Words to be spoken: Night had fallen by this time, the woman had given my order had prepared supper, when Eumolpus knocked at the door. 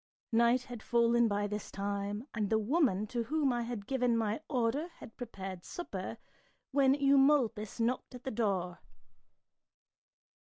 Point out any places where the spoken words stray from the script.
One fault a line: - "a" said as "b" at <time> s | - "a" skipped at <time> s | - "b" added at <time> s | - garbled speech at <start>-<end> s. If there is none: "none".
- "and" added at 2.3 s
- "to whom I" added at 3.1 s